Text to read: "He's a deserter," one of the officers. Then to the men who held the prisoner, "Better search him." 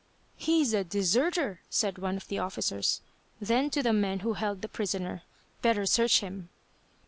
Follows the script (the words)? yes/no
no